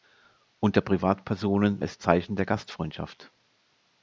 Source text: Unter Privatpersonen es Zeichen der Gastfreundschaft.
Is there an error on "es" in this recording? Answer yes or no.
no